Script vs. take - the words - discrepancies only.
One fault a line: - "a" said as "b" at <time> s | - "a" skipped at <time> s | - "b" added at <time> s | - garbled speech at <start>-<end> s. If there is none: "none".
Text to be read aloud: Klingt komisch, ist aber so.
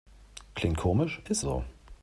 - "aber" skipped at 1.4 s